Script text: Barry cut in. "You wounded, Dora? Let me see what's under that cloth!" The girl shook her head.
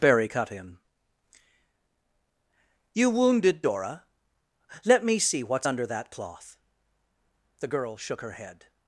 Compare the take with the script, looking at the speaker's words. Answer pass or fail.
pass